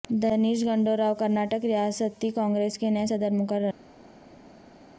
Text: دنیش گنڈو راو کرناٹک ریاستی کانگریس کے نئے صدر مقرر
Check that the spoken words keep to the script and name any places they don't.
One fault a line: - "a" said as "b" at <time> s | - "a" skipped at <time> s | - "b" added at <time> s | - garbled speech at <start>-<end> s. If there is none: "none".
none